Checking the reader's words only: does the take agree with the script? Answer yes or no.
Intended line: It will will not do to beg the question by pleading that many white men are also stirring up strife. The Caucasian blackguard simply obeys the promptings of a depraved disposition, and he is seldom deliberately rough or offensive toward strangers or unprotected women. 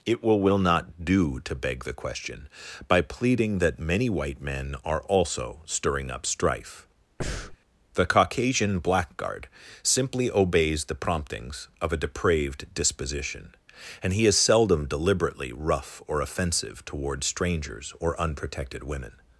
yes